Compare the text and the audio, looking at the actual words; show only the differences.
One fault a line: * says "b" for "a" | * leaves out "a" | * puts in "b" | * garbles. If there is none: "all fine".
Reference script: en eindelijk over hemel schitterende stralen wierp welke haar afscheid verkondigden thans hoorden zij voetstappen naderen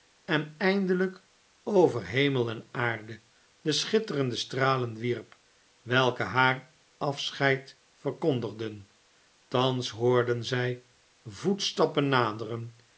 * puts in "en aarde de"